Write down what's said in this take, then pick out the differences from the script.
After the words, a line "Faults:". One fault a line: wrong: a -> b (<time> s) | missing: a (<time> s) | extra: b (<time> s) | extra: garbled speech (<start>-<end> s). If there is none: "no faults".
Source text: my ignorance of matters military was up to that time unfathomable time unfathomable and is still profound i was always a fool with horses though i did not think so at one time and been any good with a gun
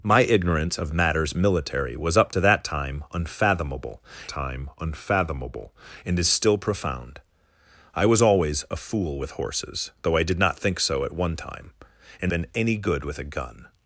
my ignorance of matters military was up to that time unfathomable time unfathomable and is still profound i was always a fool with horses though i did not think so at one time and been any good with a gun
Faults:
no faults